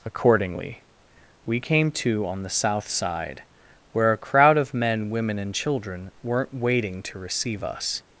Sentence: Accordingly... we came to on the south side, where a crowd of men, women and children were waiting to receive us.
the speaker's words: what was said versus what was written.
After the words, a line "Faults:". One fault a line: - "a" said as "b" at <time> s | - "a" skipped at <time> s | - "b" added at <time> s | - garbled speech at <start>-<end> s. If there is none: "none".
Accordingly... we came to on the south side, where a crowd of men, women and children weren't waiting to receive us.
Faults:
- "were" said as "weren't" at 6.2 s